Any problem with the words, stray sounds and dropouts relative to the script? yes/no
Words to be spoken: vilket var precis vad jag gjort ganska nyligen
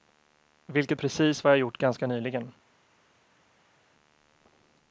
yes